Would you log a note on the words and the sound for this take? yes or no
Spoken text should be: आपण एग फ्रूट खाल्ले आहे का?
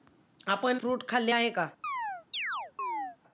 yes